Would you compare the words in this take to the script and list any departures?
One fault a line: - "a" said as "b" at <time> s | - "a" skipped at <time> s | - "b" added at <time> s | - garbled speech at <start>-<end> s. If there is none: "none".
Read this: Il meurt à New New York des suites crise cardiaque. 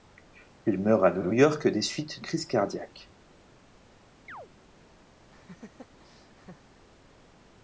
none